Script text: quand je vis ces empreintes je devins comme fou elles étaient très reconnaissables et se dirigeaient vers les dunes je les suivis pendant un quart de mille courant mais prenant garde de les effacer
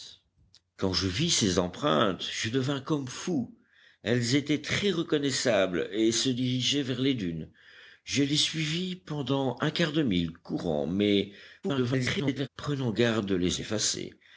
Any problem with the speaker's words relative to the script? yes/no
yes